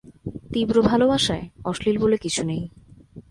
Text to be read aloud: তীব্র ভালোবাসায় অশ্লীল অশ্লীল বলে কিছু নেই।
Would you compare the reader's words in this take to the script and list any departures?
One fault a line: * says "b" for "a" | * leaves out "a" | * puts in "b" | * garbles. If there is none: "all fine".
* leaves out "অশ্লীল"